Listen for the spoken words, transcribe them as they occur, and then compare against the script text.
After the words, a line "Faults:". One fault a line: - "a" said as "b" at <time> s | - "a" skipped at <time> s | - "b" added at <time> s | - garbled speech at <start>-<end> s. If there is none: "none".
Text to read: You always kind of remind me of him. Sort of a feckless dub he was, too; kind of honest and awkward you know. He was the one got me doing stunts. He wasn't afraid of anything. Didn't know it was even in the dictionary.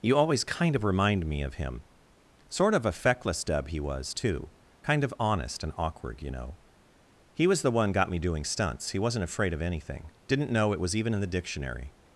You always kind of remind me of him. Sort of a feckless dub he was, too; kind of honest and awkward you know. He was the one got me doing stunts. He wasn't afraid of anything. Didn't know it was even in the dictionary.
Faults:
none